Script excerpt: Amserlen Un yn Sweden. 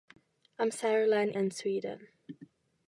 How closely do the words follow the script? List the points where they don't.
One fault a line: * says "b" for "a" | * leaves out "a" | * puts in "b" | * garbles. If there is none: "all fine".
* leaves out "Un"